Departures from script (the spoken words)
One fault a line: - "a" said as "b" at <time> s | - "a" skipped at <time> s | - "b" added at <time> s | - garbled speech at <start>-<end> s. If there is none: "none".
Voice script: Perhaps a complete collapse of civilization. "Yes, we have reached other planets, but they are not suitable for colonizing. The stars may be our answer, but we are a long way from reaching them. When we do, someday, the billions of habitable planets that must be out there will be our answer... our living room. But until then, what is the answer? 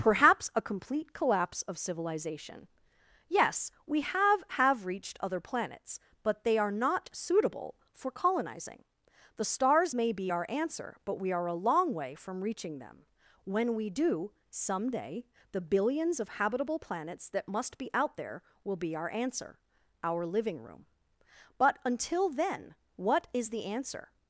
- "have" added at 4.6 s